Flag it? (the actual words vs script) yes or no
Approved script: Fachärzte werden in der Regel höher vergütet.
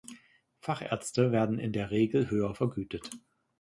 no